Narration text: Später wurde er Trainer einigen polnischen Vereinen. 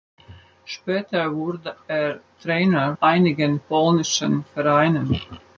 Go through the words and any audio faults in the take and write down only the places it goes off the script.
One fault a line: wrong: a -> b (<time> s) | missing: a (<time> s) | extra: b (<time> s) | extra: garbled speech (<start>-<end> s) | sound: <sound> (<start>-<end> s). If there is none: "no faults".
no faults